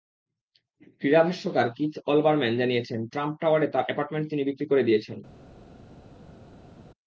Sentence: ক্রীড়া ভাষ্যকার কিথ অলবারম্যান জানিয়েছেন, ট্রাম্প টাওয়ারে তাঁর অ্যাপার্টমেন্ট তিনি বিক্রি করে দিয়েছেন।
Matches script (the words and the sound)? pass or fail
pass